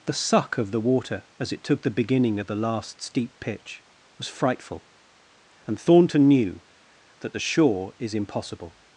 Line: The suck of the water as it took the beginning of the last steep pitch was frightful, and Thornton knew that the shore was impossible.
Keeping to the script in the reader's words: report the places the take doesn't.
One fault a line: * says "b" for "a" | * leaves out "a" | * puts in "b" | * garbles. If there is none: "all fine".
* says "is" for "was"